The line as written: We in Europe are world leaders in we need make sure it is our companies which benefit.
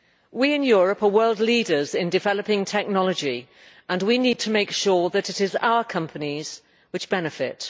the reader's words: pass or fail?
fail